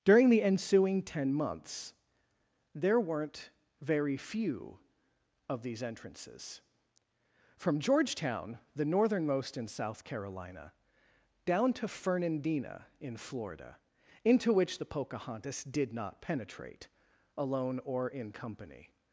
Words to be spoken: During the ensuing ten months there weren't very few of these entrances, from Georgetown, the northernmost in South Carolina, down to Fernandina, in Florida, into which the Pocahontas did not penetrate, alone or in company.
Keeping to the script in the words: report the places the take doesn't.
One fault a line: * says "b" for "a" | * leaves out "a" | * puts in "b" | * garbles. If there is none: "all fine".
all fine